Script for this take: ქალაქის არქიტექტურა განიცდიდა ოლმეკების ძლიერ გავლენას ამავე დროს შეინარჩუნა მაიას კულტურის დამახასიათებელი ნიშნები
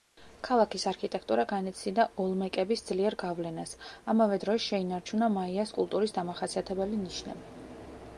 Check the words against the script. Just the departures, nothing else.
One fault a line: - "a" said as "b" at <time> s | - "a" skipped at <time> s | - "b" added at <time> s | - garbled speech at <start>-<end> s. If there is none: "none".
none